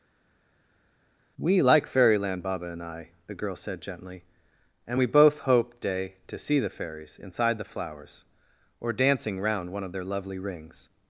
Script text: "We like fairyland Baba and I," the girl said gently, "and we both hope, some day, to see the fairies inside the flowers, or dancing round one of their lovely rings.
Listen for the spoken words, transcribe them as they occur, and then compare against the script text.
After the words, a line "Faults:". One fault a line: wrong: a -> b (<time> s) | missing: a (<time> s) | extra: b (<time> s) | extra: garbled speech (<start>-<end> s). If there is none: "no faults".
"We like fairyland Baba and I," the girl said gently, "and we both hope, day, to see the fairies inside the flowers, or dancing round one of their lovely rings.
Faults:
missing: some (5.8 s)